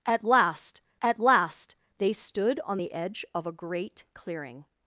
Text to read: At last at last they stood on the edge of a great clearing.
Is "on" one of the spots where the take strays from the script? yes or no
no